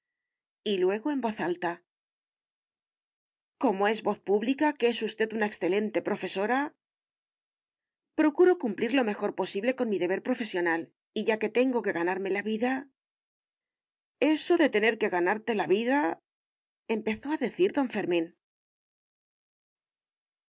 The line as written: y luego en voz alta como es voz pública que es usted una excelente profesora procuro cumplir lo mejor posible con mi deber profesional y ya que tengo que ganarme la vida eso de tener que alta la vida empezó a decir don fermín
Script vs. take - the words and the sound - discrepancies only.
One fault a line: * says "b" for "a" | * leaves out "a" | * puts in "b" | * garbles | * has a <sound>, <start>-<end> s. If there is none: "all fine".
* says "ganarte" for "alta"